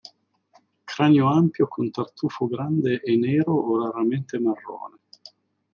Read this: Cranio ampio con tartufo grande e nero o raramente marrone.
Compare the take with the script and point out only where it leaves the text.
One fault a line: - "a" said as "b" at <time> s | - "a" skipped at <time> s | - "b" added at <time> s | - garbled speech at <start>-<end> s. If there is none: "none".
none